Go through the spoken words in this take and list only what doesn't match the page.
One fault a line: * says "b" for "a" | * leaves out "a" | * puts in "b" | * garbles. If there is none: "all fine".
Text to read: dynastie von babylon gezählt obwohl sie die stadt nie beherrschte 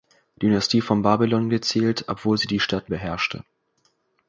* leaves out "nie"